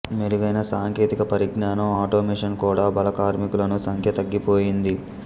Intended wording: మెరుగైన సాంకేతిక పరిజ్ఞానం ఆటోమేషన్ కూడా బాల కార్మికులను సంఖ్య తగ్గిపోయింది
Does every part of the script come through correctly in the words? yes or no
yes